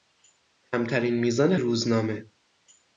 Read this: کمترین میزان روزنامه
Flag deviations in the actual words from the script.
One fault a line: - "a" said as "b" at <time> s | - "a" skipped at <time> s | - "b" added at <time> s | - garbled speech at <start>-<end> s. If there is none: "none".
none